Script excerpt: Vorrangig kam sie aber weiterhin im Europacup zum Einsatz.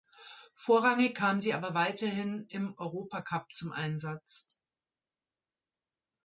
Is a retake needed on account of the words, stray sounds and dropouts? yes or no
no